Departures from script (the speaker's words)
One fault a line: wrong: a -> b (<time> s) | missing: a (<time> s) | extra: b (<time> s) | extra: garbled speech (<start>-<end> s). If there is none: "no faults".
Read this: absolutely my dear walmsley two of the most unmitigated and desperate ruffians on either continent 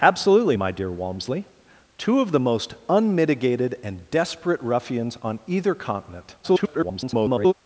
extra: garbled speech (6.4-7.5 s)